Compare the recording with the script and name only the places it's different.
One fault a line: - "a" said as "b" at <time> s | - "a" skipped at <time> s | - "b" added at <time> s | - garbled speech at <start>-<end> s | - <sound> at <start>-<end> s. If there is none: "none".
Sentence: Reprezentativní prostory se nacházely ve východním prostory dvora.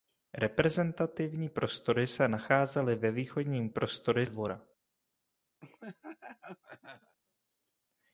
- laugh at 5.6-7.2 s